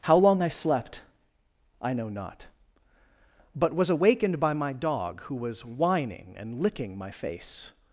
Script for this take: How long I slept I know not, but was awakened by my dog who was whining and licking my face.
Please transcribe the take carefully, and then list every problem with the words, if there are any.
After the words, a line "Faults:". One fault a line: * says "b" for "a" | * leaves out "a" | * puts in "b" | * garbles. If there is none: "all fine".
How long I slept I know not, but was awakened by my dog who was whining and licking my face.
Faults:
all fine